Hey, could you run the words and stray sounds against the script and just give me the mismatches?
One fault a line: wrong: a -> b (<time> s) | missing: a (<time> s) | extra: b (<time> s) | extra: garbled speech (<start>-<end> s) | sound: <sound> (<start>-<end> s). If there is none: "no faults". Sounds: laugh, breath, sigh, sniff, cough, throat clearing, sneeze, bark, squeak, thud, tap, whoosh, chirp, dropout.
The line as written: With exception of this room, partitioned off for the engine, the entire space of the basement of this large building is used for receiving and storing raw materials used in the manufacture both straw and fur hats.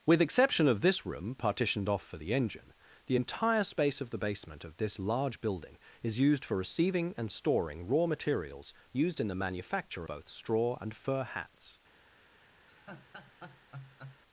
sound: laugh (12.7-14.2 s)